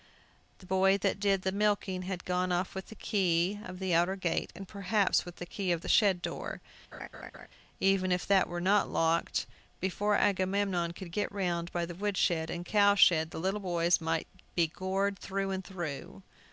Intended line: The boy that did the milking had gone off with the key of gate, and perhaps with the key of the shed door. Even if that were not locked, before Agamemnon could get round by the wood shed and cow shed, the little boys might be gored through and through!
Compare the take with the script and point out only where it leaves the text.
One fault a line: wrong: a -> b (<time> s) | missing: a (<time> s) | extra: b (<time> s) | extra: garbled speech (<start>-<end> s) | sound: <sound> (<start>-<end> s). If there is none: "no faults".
extra: the outer (3.8 s)
sound: laugh (6.9-7.5 s)